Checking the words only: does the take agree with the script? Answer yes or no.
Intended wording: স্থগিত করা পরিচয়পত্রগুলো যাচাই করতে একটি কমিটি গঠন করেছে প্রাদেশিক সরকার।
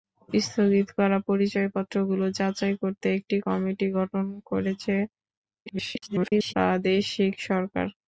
no